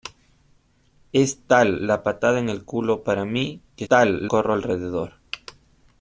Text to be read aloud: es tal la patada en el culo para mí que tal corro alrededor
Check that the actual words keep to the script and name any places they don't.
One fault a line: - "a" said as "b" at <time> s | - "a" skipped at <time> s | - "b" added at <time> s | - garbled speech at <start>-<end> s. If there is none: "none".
none